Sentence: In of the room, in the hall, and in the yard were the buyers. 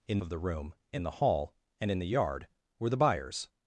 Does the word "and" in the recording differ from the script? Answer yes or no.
no